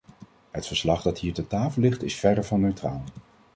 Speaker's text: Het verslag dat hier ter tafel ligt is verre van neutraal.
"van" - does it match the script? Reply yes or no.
yes